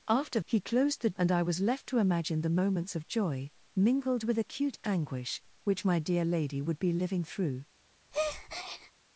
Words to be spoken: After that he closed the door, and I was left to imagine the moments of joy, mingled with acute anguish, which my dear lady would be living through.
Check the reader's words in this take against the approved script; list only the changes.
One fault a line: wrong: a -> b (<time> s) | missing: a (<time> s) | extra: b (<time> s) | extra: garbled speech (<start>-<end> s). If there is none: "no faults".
missing: that (0.4 s)
missing: door (1.1 s)